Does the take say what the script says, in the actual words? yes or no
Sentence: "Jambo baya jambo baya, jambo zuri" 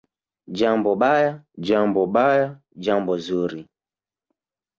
yes